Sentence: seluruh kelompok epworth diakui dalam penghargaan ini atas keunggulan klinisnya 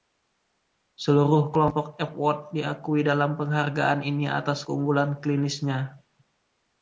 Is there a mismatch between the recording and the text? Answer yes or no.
no